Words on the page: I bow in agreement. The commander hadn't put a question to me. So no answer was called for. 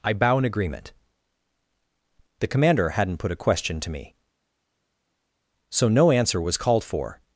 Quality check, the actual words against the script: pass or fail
pass